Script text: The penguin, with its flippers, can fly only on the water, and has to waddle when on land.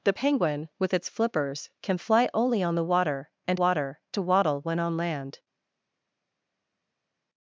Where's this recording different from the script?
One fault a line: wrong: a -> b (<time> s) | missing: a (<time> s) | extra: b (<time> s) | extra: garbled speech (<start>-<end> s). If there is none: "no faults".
wrong: has -> water (3.5 s)